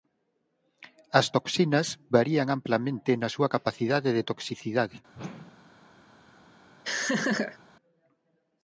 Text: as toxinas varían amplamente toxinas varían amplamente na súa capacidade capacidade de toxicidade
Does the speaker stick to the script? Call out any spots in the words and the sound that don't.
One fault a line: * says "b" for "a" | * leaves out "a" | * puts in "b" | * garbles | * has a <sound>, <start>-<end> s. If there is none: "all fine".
* leaves out "toxinas varían amplamente"
* leaves out "capacidade"
* has a whoosh, 5.1-5.9 s
* has a laugh, 6.8-7.6 s